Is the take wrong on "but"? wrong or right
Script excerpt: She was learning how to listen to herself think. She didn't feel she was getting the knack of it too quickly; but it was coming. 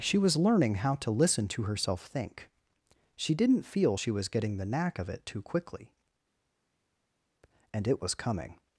wrong